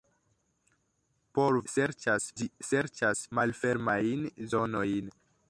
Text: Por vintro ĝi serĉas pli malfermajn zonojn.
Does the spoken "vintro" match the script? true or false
false